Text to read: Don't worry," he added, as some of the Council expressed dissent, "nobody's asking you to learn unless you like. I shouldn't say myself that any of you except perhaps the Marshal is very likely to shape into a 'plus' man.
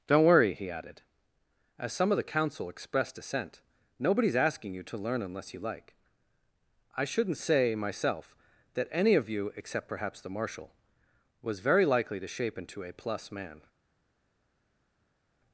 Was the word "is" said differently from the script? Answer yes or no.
yes